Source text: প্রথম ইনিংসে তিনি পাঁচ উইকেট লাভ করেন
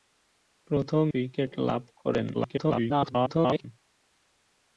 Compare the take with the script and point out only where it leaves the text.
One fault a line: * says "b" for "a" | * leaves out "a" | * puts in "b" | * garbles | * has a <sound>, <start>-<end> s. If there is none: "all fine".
* leaves out "ইনিংসে তিনি পাঁচ"
* garbles